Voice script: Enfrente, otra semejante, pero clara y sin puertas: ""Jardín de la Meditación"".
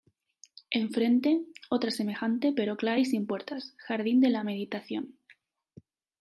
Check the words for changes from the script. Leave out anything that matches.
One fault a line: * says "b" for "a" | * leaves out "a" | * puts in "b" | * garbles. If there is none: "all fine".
all fine